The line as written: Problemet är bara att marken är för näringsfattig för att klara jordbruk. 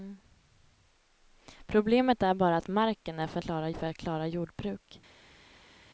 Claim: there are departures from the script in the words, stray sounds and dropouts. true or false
true